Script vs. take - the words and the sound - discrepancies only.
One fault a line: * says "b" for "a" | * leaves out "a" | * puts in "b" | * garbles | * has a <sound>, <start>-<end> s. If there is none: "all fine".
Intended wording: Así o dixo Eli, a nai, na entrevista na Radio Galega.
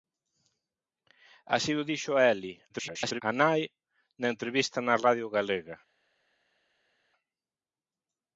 * garbles